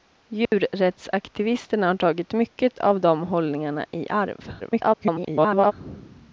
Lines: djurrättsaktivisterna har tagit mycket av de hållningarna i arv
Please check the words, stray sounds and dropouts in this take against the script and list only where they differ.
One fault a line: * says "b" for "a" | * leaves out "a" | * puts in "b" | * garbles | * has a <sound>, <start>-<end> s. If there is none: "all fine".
* has a dropout, 0.5-0.5 s
* garbles